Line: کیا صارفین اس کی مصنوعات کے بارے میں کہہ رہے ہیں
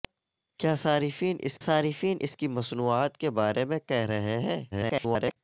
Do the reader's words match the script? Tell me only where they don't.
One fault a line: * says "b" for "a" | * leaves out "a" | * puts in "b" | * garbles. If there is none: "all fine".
* puts in "صارفین اس"
* garbles